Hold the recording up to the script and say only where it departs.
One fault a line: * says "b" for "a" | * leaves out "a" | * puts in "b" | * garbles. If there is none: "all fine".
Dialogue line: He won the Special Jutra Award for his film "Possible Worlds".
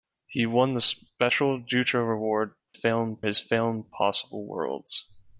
* says "film" for "for"